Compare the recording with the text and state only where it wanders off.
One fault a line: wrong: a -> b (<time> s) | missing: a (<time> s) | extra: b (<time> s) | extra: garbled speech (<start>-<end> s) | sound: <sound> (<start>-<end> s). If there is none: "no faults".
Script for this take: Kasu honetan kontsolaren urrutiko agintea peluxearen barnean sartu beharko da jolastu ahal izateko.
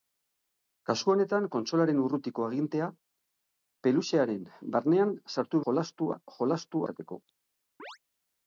wrong: beharko -> jolastu (5.7 s)
missing: ahal (6.9 s)
sound: chirp (7.8-8.0 s)